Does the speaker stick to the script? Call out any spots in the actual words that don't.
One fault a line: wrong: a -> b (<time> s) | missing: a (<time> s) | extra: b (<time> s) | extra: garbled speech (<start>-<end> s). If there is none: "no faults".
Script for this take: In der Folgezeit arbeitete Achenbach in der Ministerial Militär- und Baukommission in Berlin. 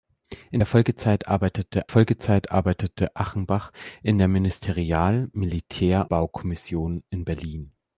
extra: Folgezeit arbeitete (1.9 s)
missing: und (6.1 s)